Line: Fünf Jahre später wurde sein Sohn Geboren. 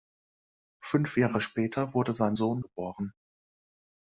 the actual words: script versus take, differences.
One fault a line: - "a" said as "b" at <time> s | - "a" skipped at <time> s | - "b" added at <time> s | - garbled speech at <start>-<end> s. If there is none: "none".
none